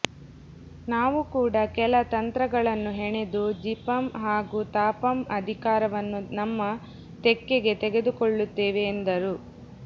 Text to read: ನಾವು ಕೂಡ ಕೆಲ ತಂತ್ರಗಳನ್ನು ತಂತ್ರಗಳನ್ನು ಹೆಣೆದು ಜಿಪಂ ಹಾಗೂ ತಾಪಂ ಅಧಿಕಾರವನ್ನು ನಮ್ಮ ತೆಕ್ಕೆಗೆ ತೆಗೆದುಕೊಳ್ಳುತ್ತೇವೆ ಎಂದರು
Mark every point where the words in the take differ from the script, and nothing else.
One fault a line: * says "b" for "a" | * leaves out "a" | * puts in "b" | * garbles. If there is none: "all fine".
* leaves out "ತಂತ್ರಗಳನ್ನು"